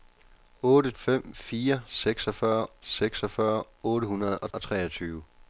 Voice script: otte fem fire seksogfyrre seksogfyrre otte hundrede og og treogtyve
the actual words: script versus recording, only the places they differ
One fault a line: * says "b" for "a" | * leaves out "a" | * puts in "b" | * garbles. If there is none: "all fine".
all fine